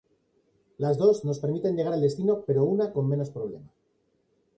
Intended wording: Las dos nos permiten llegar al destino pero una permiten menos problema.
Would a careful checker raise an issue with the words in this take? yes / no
yes